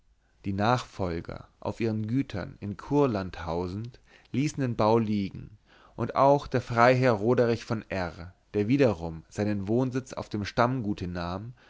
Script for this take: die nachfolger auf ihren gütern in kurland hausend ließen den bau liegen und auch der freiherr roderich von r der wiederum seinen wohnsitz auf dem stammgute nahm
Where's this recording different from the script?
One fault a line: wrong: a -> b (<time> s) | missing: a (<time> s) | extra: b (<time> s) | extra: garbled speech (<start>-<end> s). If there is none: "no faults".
no faults